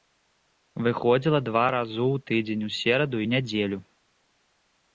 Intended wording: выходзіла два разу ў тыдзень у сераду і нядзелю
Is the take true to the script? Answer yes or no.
yes